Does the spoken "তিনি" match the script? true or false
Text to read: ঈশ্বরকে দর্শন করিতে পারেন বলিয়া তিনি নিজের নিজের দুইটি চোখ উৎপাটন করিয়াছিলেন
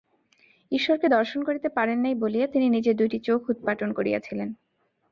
true